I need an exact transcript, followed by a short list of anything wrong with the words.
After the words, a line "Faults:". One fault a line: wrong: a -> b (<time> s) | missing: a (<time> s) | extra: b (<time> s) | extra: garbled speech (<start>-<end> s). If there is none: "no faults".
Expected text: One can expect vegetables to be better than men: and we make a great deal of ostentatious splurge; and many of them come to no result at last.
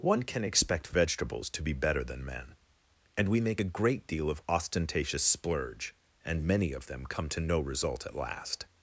One can expect vegetables to be better than men: and we make a great deal of ostentatious splurge; and many of them come to no result at last.
Faults:
no faults